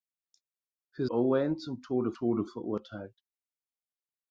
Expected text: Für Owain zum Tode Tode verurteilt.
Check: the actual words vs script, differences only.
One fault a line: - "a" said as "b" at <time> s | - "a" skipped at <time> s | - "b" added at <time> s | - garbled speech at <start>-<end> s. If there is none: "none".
none